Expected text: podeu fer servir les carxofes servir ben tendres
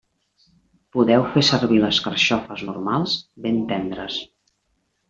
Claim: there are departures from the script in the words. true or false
true